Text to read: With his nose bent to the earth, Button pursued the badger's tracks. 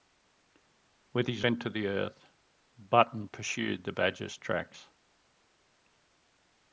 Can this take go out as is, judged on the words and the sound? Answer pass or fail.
fail